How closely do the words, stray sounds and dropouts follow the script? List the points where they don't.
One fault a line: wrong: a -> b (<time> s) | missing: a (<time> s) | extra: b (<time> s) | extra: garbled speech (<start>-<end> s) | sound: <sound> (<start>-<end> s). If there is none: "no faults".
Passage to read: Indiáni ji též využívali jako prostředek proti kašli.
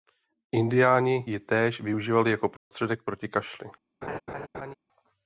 sound: dropout (2.6-2.7 s)
sound: laugh (4.0-4.7 s)